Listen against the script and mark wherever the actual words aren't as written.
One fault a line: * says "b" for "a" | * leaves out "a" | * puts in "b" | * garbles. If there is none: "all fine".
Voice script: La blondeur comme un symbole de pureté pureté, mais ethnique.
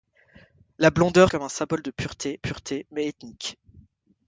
all fine